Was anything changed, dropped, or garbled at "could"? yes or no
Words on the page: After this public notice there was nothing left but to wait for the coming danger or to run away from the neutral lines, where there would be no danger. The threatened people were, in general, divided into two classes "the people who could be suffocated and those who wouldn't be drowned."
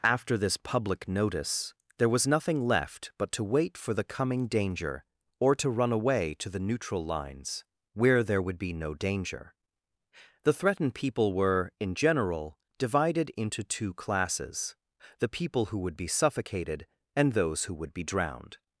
yes